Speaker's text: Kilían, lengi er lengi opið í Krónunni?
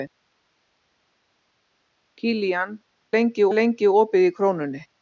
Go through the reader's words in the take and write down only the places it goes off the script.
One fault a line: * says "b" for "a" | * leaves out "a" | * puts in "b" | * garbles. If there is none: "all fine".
all fine